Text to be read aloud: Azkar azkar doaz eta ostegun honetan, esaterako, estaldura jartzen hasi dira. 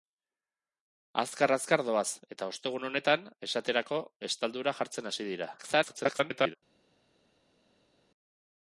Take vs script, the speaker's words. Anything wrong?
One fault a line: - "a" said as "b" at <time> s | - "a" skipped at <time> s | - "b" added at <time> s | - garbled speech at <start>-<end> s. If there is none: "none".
- garbled speech at 5.6-6.5 s